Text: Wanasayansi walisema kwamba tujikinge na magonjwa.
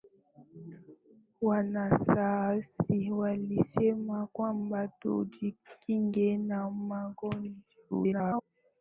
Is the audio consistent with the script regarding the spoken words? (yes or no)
no